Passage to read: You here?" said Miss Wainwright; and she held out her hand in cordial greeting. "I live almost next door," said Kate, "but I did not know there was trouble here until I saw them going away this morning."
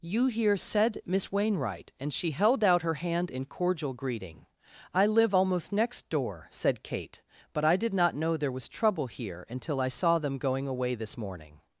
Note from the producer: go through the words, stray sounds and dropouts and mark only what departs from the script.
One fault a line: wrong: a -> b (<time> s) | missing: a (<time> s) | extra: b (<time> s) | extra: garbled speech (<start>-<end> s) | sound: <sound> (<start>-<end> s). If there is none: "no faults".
no faults